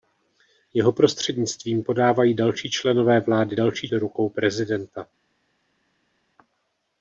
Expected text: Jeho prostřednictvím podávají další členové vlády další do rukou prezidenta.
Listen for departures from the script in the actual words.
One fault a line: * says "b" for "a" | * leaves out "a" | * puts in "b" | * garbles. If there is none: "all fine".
all fine